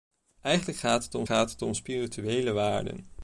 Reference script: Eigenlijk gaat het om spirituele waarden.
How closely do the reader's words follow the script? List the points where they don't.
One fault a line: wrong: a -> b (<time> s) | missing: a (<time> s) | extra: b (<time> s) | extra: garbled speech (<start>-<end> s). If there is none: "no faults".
extra: gaat het om (1.2 s)